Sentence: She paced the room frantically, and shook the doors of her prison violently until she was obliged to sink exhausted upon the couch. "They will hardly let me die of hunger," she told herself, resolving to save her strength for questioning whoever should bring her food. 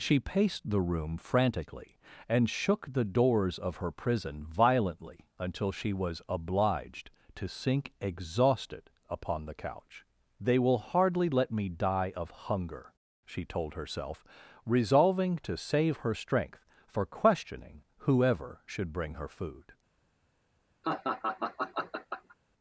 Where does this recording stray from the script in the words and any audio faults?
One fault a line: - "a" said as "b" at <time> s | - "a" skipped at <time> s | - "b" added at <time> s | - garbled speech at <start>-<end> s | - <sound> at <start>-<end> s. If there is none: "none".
- laugh at 20.8-22.4 s